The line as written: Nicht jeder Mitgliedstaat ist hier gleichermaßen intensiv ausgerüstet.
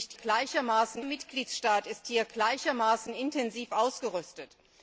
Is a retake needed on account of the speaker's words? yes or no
yes